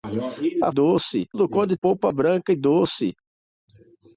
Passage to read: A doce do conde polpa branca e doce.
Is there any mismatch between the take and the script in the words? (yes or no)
no